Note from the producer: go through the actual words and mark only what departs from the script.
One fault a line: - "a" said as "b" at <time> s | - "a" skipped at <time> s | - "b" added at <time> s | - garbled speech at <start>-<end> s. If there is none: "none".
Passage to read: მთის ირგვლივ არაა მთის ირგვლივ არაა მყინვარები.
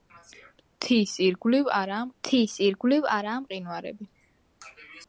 none